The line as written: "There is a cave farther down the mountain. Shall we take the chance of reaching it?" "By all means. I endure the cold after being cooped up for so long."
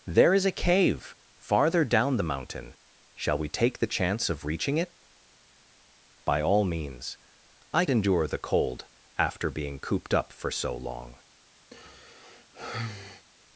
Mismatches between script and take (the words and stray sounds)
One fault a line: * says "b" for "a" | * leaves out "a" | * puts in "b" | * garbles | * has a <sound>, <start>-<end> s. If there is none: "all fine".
* has a sigh, 11.7-13.3 s